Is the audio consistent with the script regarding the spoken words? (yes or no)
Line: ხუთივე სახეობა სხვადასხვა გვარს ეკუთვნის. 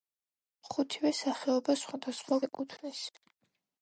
no